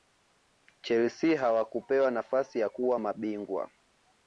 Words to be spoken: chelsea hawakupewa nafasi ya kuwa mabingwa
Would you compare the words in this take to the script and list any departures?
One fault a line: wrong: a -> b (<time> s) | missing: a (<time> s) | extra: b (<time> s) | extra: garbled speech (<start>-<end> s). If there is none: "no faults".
no faults